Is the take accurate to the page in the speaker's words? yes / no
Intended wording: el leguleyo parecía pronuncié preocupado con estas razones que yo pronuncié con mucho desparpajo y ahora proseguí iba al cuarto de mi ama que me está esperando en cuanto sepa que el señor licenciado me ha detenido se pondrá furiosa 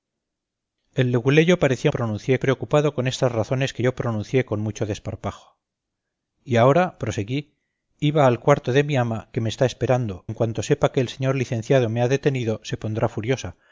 yes